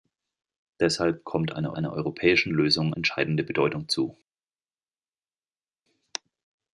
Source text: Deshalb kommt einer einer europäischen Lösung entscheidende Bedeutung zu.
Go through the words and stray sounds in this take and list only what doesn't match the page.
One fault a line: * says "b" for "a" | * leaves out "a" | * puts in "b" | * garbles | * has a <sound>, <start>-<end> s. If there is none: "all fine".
all fine